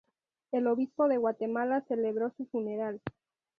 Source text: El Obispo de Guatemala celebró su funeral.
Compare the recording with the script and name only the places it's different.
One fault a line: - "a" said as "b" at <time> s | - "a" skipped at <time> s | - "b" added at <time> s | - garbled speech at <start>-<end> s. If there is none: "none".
none